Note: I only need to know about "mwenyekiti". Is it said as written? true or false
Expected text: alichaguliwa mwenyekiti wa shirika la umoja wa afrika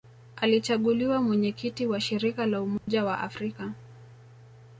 true